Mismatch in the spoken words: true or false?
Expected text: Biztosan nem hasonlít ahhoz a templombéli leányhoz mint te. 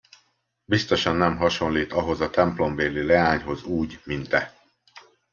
true